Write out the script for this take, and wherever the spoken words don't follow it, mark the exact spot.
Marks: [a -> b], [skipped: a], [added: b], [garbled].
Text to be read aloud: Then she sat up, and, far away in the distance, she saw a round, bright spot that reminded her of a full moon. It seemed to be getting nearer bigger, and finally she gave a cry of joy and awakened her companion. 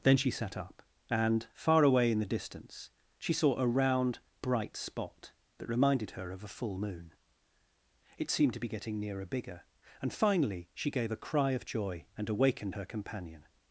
Then she sat up, and, far away in the distance, she saw a round, bright spot that reminded her of a full moon. It seemed to be getting nearer bigger, and finally she gave a cry of joy and awakened her companion.